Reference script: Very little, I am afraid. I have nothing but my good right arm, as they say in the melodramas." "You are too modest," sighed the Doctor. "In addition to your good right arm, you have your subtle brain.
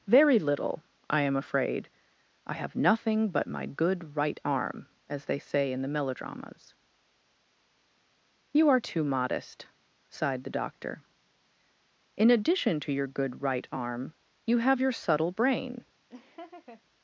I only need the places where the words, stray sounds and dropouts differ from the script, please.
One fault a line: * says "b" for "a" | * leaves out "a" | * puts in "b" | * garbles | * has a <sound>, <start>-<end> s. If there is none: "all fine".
* has a laugh, 16.1-16.8 s